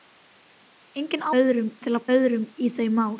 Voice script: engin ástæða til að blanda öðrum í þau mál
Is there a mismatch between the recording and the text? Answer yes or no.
yes